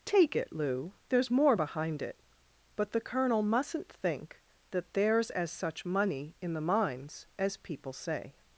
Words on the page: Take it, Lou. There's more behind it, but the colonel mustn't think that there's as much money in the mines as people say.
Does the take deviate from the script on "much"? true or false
true